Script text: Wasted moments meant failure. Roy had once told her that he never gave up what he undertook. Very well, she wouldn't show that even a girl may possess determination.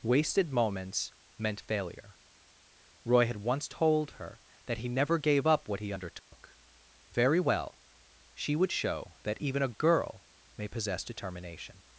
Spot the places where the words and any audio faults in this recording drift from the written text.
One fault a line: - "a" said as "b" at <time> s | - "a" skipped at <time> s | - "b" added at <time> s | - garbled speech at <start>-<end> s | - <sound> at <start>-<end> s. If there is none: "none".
- dropout at 6.2-6.3 s
- "wouldn't" said as "would" at 8.6 s